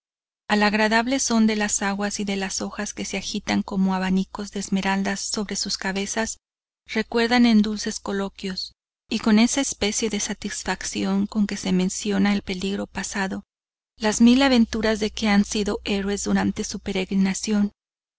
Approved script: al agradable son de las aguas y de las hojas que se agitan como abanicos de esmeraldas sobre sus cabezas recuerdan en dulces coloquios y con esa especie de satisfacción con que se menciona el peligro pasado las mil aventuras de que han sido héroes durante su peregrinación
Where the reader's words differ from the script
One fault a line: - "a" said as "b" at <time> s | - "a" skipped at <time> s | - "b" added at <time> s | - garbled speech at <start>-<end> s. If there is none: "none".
none